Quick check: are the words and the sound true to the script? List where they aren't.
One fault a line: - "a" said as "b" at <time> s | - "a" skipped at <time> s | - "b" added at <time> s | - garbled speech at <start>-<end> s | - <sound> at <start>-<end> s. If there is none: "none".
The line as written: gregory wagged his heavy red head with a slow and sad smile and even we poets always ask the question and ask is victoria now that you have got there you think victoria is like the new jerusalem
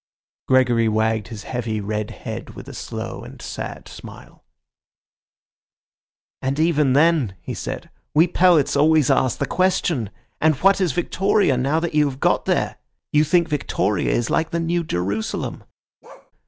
- "then he said" added at 6.9 s
- "ask" said as "what" at 10.6 s
- bark at 16.0-16.3 s